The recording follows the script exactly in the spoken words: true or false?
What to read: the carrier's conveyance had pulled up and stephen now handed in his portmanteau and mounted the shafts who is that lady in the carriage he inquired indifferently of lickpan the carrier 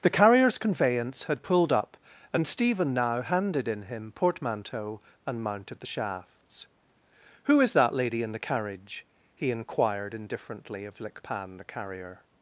false